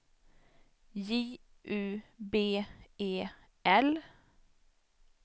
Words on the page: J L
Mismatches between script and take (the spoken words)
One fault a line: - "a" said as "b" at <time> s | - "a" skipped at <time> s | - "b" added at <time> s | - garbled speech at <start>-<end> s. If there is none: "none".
- "U B E" added at 1.6 s